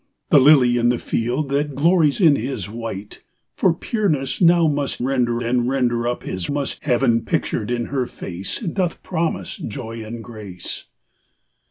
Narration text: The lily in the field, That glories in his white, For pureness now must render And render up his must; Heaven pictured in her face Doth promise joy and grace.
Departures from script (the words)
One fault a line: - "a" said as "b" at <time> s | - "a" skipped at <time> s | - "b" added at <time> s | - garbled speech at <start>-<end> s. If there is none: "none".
none